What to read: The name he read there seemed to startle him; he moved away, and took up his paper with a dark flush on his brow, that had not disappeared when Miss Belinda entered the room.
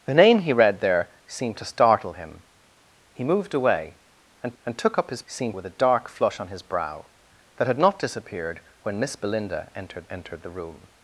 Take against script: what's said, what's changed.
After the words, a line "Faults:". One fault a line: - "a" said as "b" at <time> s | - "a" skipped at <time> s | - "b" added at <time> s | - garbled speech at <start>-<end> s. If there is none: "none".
The name he read there seemed to startle him; he moved away, and and took up his seemed with a dark flush on his brow, that had not disappeared when Miss Belinda entered entered the room.
Faults:
- "and" added at 4.6 s
- "paper" said as "seemed" at 5.3 s
- "entered" added at 10.1 s